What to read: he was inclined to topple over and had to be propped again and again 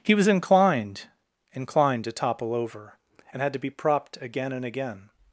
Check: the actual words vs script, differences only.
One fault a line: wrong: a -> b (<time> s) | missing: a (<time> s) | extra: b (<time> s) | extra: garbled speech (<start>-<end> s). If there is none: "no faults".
extra: inclined (1.5 s)